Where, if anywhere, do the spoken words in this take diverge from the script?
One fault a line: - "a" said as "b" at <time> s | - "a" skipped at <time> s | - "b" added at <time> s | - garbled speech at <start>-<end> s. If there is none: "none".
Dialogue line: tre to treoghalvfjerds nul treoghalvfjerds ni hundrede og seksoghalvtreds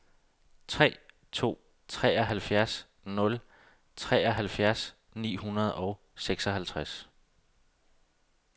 none